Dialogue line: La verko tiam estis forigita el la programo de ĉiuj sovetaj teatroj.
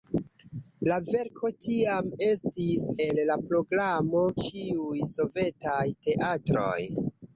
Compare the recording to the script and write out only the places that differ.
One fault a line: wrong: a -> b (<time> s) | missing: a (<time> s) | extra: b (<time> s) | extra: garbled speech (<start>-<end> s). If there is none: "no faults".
missing: forigita (2.9 s)
missing: de (4.3 s)